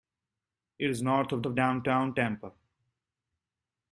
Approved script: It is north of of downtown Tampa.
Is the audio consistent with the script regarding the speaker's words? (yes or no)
yes